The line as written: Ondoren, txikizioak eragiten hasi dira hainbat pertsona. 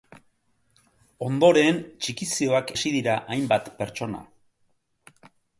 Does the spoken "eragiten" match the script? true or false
false